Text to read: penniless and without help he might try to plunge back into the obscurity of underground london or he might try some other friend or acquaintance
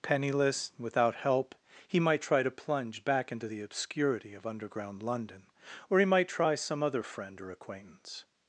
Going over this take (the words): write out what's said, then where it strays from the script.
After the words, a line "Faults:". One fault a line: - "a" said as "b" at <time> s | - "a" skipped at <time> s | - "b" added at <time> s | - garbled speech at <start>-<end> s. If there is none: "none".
penniless without help he might try to plunge back into the obscurity of underground london or he might try some other friend or acquaintance
Faults:
- "and" skipped at 0.7 s